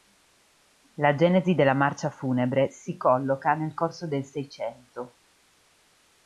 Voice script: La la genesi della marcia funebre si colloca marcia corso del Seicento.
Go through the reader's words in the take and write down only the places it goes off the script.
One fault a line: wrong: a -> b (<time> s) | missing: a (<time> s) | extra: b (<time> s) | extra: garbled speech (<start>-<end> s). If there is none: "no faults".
missing: la (1.1 s)
wrong: marcia -> nel (3.5 s)